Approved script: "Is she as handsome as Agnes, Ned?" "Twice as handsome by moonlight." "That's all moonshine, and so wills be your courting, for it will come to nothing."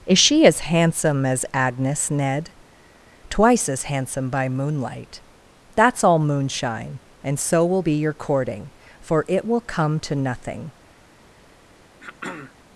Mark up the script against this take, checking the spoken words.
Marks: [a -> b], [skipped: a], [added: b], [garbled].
"Is she as handsome as Agnes, Ned?" "Twice as handsome by moonlight." "That's all moonshine, and so [wills -> will] be your courting, for it will come to nothing."